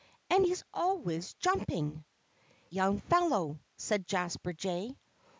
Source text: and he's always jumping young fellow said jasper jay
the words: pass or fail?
pass